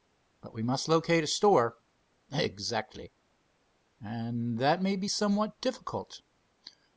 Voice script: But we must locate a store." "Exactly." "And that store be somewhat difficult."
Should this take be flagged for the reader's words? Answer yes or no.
yes